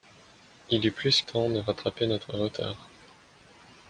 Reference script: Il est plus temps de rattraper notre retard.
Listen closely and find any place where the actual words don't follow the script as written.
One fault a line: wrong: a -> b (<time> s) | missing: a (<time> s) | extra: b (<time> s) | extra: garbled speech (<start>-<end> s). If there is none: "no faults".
no faults